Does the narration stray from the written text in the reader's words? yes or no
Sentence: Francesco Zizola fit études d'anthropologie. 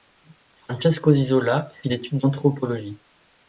no